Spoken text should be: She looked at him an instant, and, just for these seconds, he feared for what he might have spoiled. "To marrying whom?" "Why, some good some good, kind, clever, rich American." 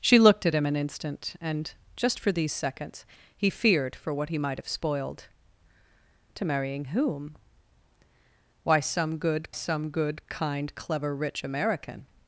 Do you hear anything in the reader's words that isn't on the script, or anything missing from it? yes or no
no